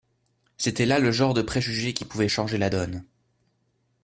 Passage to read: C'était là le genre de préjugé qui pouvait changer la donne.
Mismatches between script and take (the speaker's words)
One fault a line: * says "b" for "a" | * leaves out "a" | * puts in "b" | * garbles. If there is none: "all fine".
all fine